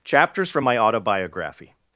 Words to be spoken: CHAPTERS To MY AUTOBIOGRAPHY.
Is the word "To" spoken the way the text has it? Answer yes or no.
no